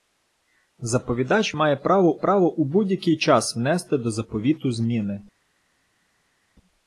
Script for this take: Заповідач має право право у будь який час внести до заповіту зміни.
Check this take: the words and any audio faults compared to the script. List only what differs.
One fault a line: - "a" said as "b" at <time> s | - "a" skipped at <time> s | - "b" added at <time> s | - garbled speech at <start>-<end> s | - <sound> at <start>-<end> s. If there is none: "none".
none